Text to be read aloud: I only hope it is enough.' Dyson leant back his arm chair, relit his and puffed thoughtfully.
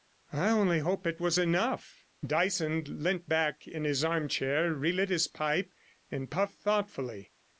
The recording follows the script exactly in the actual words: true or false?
false